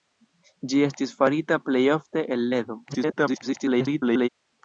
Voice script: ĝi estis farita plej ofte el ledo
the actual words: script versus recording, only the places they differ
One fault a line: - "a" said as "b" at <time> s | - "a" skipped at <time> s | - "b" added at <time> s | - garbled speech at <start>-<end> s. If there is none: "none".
- garbled speech at 2.9-4.3 s